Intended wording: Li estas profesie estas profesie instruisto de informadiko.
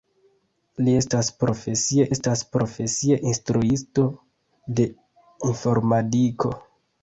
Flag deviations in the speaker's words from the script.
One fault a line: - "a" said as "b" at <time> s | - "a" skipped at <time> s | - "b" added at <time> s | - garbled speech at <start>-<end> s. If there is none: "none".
none